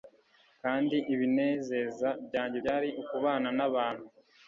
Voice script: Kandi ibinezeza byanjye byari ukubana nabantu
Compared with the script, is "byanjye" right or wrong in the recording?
right